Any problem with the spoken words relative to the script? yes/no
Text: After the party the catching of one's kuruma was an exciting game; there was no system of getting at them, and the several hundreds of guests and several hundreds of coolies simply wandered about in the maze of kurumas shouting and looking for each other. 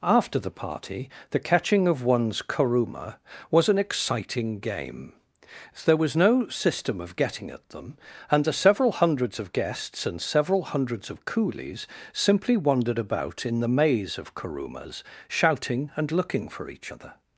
no